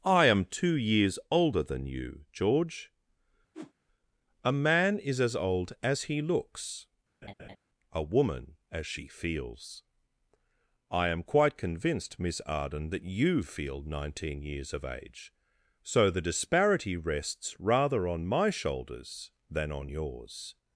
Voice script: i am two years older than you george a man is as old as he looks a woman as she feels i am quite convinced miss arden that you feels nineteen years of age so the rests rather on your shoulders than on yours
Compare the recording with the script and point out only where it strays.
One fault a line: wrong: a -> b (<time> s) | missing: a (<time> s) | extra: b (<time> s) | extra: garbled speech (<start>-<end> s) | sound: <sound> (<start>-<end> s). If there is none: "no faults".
sound: whoosh (3.5-3.7 s)
sound: laugh (7.2-7.6 s)
wrong: feels -> feel (13.4 s)
extra: disparity (16.2 s)
wrong: your -> my (18.3 s)